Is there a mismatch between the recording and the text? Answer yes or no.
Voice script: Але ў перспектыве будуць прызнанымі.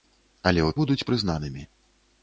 yes